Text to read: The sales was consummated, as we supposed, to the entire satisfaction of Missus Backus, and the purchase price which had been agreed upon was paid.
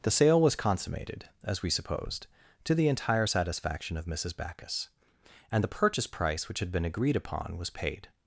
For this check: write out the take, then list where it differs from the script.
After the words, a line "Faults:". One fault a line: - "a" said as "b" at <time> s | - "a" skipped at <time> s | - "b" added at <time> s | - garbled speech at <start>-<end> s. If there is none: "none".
The sale was consummated, as we supposed, to the entire satisfaction of Missus Backus, and the purchase price which had been agreed upon was paid.
Faults:
- "sales" said as "sale" at 0.1 s